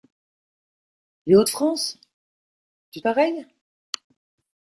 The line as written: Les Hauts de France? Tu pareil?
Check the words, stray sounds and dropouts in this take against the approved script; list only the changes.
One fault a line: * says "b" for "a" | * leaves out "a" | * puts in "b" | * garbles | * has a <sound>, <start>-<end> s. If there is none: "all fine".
all fine